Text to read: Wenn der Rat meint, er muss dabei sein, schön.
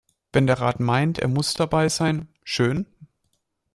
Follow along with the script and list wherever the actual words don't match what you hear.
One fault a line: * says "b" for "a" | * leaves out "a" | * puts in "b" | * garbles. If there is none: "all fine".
all fine